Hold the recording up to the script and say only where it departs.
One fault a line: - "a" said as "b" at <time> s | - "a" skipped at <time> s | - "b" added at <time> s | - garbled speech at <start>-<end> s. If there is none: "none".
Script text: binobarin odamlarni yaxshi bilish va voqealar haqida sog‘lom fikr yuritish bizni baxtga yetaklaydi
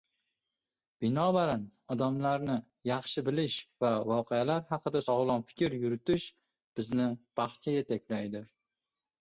none